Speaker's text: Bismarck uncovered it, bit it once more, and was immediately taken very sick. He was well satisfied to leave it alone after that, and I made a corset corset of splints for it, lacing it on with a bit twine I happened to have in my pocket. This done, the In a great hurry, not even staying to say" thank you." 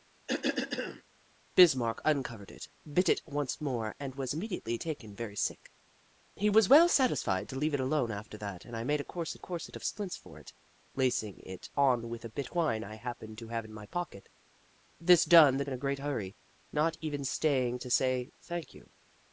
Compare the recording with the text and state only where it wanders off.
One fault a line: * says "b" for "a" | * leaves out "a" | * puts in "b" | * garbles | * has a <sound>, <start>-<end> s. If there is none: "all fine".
* has a cough, 0.3-1.0 s